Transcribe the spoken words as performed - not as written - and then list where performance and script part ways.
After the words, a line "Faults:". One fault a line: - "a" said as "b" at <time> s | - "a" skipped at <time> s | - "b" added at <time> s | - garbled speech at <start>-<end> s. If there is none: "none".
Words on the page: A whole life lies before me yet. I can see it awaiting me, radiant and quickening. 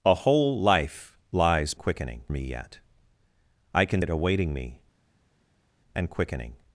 A whole life lies quickening me yet. I can it awaiting me, and quickening.
Faults:
- "before" said as "quickening" at 1.8 s
- "see" skipped at 4.0 s
- "radiant" skipped at 4.8 s